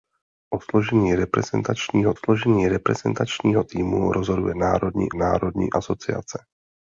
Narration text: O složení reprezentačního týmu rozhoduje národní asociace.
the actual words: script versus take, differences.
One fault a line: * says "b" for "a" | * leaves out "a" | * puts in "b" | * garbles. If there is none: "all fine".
* puts in "složení reprezentačního"
* puts in "národní"